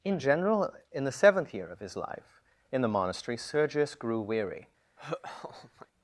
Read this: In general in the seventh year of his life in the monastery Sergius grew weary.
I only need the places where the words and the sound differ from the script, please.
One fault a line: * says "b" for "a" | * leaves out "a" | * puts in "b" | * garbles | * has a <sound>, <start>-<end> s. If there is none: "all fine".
* has a laugh, 5.0-5.9 s